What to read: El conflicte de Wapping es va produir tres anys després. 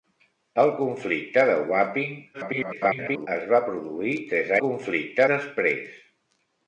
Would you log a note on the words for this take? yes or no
yes